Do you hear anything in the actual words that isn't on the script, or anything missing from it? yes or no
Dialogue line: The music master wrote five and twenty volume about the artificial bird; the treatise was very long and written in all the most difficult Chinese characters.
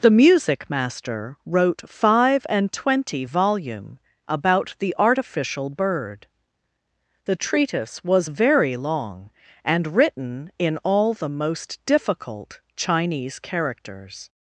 no